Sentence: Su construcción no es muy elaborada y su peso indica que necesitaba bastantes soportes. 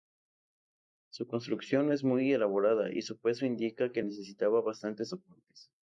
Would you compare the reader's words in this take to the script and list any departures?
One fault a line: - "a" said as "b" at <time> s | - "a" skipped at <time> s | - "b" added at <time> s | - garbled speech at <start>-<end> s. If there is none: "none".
none